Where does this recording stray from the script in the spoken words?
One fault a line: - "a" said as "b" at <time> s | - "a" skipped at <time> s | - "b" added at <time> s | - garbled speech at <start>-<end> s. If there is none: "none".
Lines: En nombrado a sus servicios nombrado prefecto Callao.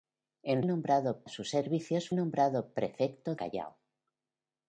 none